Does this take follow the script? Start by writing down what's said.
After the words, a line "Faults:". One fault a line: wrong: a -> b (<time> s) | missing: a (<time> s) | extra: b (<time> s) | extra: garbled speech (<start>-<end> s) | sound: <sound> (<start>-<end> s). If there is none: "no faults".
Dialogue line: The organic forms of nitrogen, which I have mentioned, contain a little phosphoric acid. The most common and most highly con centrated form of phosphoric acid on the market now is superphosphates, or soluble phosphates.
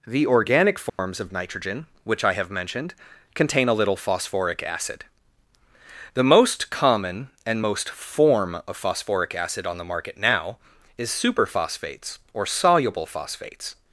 The organic forms of nitrogen, which I have mentioned, contain a little phosphoric acid. The most common and most form of phosphoric acid on the market now is superphosphates, or soluble phosphates.
Faults:
sound: dropout (0.9-1.0 s)
missing: highly con centrated (7.9 s)